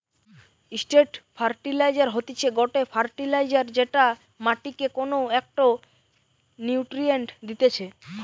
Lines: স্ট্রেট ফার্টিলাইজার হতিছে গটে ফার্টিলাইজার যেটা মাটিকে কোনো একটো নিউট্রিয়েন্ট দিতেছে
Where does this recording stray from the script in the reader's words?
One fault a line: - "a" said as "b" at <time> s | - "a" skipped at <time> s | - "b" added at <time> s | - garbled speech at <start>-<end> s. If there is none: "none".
none